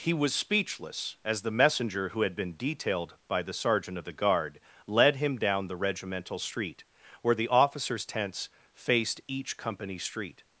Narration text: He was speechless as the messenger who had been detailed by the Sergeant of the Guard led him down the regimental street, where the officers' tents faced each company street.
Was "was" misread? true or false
false